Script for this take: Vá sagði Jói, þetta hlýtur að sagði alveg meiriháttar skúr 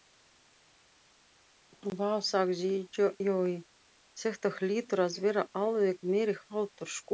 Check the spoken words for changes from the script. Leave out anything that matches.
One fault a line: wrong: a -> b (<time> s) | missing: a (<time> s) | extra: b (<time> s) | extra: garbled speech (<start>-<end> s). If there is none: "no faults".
wrong: sagði -> vera (5.3 s)